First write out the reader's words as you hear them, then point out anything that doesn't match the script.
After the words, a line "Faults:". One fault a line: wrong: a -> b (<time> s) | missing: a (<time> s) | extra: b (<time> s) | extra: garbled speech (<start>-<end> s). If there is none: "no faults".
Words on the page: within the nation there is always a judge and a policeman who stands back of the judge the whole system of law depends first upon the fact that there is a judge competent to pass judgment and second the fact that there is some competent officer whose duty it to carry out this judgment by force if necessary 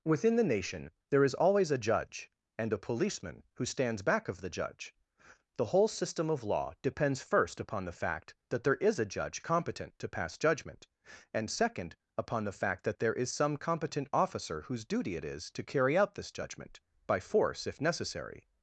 within the nation there is always a judge and a policeman who stands back of the judge the whole system of law depends first upon the fact that there is a judge competent to pass judgment and second upon the fact that there is some competent officer whose duty it is to carry out this judgment by force if necessary
Faults:
extra: upon (12.2 s)
extra: is (15.2 s)